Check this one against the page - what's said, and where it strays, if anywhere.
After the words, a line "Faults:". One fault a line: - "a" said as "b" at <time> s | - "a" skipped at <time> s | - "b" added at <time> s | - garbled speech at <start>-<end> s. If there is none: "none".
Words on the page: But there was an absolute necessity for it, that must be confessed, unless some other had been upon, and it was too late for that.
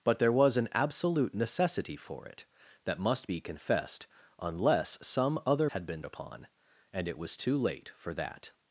But there was an absolute necessity for it, that must be confessed, unless some other had been upon, and it was too late for that.
Faults:
none